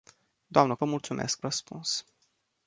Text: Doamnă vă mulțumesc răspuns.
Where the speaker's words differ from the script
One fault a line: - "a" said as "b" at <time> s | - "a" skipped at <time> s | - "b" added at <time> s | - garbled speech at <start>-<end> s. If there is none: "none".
none